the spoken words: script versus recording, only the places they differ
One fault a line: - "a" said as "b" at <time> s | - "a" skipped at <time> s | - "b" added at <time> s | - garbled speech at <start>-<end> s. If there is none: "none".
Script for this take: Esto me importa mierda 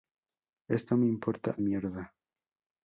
none